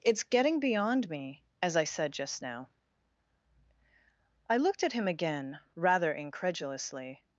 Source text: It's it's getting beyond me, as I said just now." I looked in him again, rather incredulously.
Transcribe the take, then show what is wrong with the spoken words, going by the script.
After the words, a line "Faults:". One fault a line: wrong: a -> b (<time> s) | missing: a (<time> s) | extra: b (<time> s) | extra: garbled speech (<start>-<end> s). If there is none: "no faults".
It's getting beyond me, as I said just now." I looked at him again, rather incredulously.
Faults:
missing: it's (0.2 s)
wrong: in -> at (4.8 s)